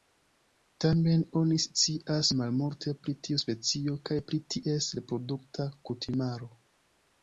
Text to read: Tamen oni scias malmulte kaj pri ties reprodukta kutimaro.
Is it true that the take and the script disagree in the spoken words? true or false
true